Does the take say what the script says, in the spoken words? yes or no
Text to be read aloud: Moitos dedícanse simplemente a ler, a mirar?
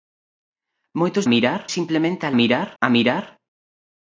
no